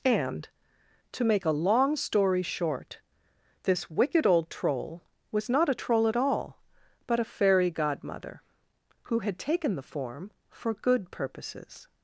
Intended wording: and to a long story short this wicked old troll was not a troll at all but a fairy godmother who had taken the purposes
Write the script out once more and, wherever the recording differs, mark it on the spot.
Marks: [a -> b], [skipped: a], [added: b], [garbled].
and to [added: make] a long story short this wicked old troll was not a troll at all but a fairy godmother who had taken the [added: form for good] purposes